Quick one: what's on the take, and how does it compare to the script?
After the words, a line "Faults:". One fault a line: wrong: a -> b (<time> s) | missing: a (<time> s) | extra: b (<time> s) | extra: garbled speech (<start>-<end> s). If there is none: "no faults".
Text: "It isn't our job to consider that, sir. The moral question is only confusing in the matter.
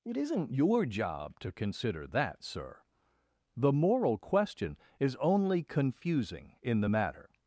"It isn't your job to consider that, sir. The moral question is only confusing in the matter.
Faults:
wrong: our -> your (0.5 s)